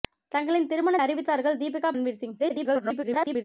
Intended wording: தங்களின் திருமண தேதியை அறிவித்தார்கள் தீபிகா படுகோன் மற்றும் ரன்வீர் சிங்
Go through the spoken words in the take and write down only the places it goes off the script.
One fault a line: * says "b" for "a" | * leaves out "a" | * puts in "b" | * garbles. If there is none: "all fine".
* leaves out "தேதியை"
* leaves out "படுகோன் மற்றும்"
* garbles